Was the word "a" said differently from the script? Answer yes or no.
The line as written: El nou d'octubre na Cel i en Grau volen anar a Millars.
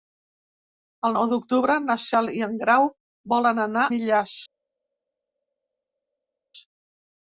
yes